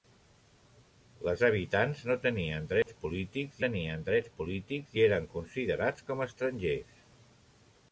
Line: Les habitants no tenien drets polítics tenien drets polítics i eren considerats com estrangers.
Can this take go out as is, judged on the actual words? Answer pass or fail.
pass